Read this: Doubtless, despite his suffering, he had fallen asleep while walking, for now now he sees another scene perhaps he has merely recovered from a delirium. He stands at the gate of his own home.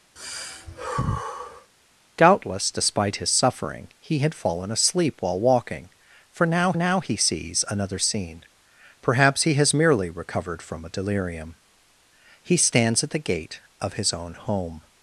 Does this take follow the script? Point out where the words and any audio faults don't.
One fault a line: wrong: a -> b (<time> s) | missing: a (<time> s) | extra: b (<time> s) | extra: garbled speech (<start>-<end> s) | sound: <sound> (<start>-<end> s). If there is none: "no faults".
sound: sigh (0.2-1.7 s)